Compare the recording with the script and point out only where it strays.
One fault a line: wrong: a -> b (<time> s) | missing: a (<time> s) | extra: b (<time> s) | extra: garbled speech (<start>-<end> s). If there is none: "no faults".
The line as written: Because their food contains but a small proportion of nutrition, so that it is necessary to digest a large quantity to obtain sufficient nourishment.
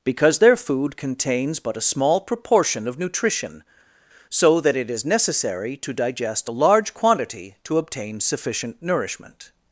no faults